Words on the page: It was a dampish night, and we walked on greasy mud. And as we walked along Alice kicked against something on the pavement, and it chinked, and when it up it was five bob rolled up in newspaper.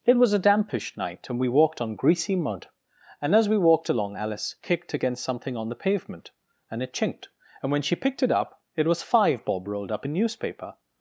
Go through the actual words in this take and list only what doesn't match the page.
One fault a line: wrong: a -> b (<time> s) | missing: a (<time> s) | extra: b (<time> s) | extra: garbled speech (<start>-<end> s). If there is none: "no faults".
extra: she picked (7.8 s)